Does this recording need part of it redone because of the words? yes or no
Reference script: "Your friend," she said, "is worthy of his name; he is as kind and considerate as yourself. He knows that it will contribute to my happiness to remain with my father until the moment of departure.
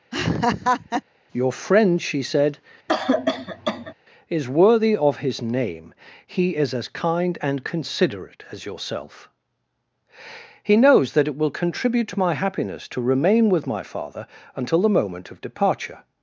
no